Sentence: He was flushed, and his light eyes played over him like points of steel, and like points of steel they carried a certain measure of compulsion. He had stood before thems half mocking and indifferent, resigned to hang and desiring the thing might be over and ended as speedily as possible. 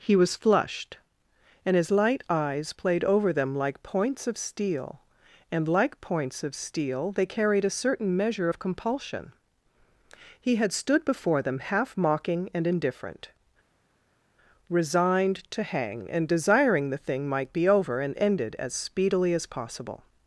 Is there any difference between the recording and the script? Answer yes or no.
yes